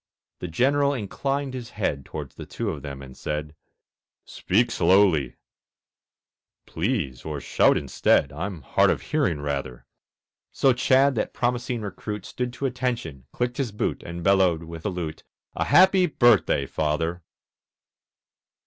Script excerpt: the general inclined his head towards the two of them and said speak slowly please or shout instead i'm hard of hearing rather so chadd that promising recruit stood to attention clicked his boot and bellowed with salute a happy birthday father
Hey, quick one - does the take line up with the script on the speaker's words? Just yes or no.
yes